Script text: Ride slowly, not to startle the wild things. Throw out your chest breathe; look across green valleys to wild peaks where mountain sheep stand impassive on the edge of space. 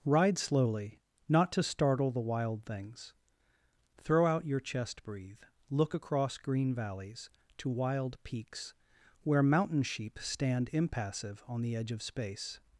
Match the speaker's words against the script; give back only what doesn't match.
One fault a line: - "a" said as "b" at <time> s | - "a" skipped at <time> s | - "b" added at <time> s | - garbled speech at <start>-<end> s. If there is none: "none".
none